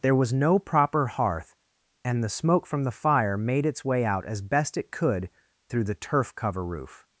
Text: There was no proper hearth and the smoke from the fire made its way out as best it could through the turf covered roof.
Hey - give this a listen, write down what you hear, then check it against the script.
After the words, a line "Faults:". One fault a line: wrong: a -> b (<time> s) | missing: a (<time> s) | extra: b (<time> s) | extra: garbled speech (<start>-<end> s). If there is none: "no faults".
There was no proper hearth and the smoke from the fire made its way out as best it could through the turf cover roof.
Faults:
wrong: covered -> cover (6.3 s)